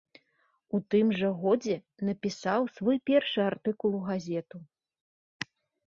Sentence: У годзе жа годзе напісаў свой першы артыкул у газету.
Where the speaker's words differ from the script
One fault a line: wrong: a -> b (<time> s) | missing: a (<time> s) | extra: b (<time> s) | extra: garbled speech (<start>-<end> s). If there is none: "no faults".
wrong: годзе -> тым (0.9 s)